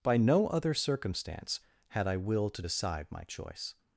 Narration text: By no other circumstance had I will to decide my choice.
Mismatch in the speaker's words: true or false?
false